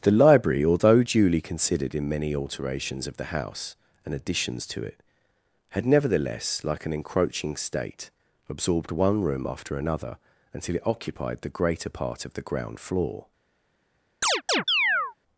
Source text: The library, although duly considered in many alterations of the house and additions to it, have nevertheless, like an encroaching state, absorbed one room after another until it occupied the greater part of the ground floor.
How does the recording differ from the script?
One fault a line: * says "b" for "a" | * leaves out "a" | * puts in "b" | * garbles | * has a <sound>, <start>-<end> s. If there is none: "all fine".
* says "had" for "have"
* has a chirp, 14.2-15.1 s